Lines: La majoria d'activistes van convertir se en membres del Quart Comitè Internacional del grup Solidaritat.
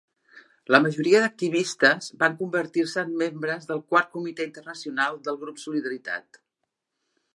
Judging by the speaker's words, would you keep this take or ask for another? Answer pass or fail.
pass